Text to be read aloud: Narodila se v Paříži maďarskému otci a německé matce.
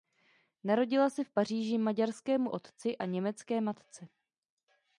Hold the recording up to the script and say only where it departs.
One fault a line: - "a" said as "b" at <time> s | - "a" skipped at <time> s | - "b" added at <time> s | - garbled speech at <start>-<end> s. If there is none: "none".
none